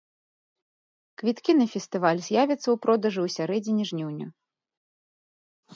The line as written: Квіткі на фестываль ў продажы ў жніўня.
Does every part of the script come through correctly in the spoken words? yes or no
no